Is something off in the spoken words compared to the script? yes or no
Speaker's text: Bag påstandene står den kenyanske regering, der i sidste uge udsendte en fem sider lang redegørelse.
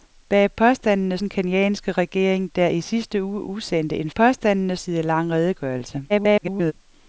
yes